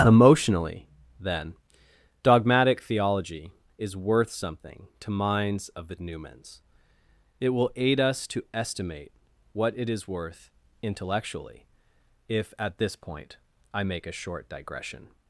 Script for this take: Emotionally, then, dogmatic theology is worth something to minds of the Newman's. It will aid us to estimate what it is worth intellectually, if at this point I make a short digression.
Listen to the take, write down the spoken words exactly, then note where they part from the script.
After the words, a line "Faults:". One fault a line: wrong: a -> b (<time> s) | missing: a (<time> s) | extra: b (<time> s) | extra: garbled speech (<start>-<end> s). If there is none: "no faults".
Emotionally, then, dogmatic theology is worth something to minds of the Newman's. It will aid us to estimate what it is worth intellectually, if at this point I make a short digression.
Faults:
no faults